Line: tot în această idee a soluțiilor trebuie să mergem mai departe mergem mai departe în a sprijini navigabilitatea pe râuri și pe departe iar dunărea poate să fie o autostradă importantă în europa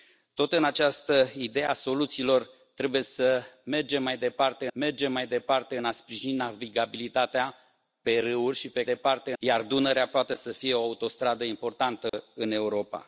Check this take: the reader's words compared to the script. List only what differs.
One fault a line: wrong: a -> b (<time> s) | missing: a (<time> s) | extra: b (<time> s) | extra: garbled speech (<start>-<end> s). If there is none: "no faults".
no faults